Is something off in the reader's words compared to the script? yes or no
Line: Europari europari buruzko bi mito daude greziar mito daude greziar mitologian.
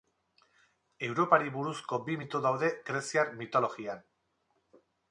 yes